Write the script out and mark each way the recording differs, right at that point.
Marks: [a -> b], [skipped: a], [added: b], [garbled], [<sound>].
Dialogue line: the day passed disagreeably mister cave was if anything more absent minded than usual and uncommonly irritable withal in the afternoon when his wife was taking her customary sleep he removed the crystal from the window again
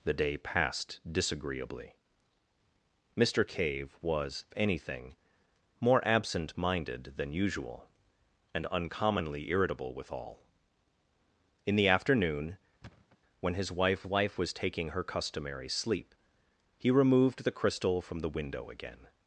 the day passed disagreeably mister cave was [skipped: if] anything more absent minded than usual and uncommonly irritable withal in the afternoon [thud] when his wife [added: wife] was taking her customary sleep he removed the crystal from the window again